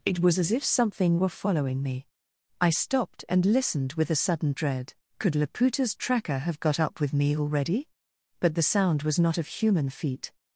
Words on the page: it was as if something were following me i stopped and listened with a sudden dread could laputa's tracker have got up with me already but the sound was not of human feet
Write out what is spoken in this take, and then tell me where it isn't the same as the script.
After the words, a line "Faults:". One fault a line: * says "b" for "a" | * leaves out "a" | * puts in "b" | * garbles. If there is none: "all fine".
it was as if something were following me i stopped and listened with a sudden dread could laputa's tracker have got up with me already but the sound was not of human feet
Faults:
all fine